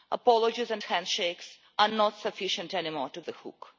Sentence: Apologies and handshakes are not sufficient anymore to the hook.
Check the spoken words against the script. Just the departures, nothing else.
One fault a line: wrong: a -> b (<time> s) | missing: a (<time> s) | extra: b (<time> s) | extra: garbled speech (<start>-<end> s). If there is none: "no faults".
no faults